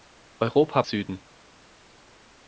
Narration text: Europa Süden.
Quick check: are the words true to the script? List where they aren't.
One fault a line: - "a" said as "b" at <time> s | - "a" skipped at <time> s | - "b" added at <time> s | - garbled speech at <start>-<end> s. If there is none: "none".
none